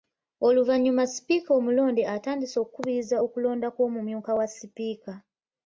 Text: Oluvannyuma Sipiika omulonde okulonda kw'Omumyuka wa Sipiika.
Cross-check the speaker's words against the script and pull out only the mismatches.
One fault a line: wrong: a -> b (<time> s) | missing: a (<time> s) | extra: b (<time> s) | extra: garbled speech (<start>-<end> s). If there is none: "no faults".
extra: atandise okukubiriza (2.1 s)